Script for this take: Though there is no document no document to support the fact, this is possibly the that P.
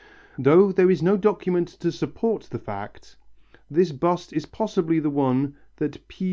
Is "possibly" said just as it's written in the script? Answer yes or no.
yes